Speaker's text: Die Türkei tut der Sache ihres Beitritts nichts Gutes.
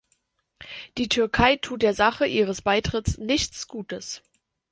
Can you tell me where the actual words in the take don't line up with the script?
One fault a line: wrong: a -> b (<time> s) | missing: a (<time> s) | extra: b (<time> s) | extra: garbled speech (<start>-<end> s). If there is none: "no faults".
no faults